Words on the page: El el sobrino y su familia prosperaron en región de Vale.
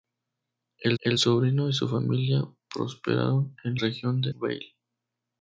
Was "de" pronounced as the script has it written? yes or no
yes